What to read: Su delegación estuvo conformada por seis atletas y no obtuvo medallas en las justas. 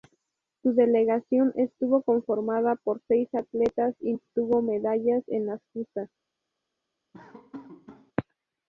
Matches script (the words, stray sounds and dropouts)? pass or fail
fail